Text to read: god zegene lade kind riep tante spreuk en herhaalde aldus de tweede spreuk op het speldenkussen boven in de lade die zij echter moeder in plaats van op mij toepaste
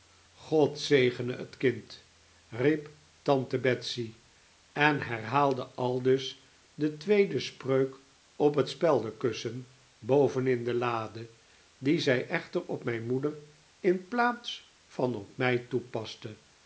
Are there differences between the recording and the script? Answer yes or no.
yes